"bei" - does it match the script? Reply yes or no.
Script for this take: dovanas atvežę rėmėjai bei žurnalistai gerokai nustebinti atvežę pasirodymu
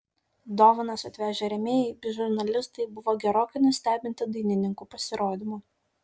yes